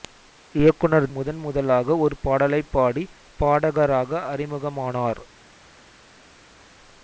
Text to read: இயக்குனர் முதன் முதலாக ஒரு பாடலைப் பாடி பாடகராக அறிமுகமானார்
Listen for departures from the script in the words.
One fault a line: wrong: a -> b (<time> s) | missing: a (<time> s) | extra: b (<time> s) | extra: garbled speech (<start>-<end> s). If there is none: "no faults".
no faults